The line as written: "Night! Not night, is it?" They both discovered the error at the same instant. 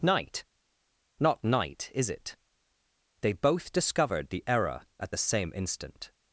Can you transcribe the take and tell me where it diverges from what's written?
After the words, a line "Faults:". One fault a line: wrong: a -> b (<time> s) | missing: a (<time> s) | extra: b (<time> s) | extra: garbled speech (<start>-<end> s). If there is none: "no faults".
"Night! Not night, is it?" They both discovered the error at the same instant.
Faults:
no faults